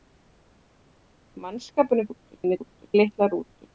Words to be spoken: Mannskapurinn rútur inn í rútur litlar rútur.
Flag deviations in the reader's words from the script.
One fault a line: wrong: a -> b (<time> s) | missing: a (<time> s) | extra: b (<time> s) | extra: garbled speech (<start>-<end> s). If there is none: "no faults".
no faults